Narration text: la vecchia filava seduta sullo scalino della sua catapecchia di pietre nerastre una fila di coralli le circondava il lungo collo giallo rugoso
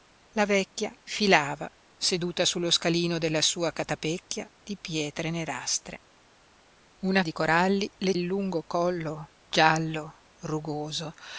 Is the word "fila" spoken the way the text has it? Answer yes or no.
no